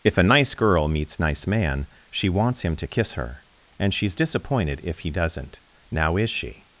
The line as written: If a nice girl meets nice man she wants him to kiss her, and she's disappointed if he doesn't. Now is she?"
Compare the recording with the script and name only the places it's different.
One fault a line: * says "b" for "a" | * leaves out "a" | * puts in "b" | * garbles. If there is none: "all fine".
all fine